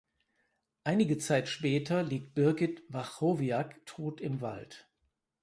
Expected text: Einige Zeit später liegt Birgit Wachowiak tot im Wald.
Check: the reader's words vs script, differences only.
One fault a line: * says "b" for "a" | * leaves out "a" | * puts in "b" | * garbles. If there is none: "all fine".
all fine